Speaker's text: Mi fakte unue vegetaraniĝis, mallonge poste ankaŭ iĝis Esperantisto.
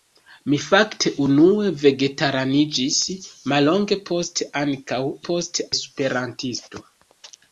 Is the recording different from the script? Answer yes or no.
yes